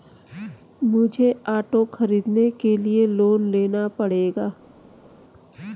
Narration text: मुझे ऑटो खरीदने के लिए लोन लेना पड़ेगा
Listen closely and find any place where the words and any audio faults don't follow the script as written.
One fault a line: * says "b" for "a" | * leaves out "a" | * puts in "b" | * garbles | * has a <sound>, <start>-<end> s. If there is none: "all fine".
all fine